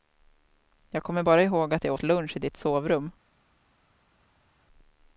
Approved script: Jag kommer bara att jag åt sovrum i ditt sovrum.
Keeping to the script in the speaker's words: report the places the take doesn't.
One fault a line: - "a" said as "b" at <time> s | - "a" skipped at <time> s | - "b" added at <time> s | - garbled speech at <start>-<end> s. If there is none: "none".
- "ihåg" added at 1.4 s
- "sovrum" said as "lunch" at 2.0 s